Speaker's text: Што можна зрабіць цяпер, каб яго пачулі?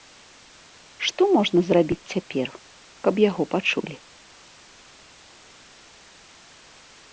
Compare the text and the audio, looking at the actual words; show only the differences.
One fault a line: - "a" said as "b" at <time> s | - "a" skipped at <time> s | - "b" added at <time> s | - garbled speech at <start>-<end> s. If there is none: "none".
none